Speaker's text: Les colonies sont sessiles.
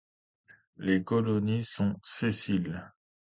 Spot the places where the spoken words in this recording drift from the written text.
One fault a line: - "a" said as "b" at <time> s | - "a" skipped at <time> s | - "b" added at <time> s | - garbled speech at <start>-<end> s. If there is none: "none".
none